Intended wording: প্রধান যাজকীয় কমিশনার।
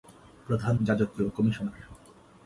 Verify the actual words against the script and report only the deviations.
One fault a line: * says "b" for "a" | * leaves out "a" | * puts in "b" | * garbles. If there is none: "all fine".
all fine